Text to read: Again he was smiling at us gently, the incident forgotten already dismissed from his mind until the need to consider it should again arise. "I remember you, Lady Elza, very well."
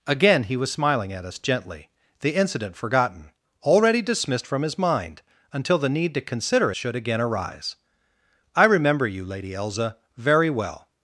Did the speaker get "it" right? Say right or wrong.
wrong